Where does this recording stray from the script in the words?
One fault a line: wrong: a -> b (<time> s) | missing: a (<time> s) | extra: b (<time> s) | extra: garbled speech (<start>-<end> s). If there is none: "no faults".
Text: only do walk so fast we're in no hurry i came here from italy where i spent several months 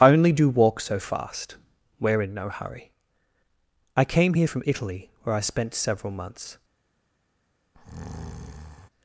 no faults